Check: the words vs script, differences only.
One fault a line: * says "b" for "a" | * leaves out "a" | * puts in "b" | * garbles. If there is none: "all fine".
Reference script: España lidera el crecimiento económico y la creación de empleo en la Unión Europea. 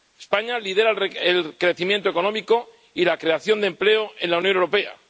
all fine